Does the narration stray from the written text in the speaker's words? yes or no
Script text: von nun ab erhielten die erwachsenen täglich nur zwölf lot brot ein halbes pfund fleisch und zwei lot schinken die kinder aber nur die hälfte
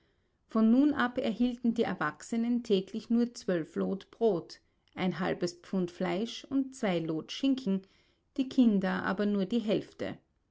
no